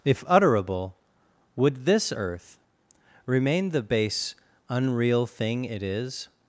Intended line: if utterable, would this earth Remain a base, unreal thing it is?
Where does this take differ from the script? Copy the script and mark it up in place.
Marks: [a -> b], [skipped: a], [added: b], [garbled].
if utterable, would this earth Remain [a -> the] base, unreal thing it is?